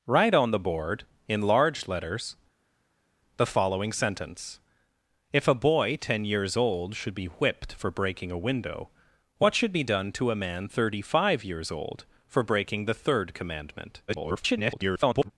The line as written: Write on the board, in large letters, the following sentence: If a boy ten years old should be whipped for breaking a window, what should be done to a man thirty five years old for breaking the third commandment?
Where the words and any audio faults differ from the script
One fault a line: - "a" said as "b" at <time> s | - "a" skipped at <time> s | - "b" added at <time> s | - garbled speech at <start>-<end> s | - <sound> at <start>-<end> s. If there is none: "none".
- garbled speech at 14.1-15.3 s